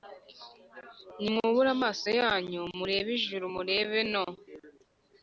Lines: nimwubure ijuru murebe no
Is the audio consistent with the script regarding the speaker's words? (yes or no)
no